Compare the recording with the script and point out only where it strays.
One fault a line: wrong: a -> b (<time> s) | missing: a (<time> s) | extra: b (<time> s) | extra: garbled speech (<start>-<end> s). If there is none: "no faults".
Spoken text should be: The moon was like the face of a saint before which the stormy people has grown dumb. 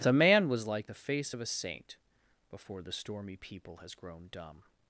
wrong: moon -> man (0.1 s)
missing: which (2.8 s)